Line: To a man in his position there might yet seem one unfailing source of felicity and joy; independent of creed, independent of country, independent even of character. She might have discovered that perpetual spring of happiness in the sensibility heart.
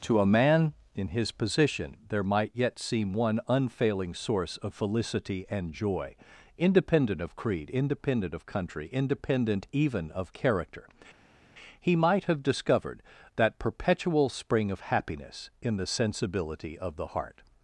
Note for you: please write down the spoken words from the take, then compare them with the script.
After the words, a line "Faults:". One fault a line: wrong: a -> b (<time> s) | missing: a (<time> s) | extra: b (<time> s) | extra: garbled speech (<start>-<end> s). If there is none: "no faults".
To a man in his position there might yet seem one unfailing source of felicity and joy; independent of creed, independent of country, independent even of character. He might have discovered that perpetual spring of happiness in the sensibility of the heart.
Faults:
wrong: She -> He (11.8 s)
extra: of the (16.8 s)